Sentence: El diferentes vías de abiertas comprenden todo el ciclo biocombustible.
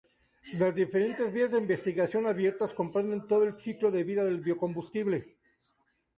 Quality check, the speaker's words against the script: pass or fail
fail